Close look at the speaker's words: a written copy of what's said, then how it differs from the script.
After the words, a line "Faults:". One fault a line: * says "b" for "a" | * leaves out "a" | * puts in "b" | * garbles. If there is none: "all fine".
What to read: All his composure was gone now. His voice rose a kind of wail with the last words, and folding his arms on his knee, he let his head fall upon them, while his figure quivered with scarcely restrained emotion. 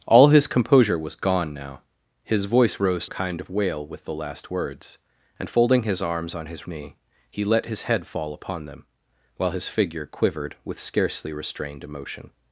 All his composure was gone now. His voice rose a kind of wail with the last words, and folding his arms on his knee, he let his head fall upon them, while his figure quivered with scarcely restrained emotion.
Faults:
all fine